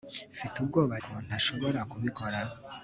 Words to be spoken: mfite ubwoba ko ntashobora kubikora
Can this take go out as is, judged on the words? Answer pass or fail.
pass